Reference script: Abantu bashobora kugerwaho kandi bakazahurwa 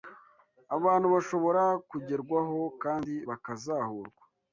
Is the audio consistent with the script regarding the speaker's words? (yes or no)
yes